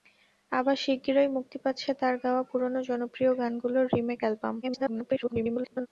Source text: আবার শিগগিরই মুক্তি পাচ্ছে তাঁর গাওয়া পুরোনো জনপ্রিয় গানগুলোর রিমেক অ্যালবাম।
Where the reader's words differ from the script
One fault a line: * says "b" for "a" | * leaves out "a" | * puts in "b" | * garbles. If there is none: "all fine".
* garbles